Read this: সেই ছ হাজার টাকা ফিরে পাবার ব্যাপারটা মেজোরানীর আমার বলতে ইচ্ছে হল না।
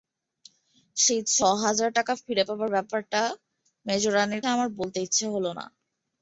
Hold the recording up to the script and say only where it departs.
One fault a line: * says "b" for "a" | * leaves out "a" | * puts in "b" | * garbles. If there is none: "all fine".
all fine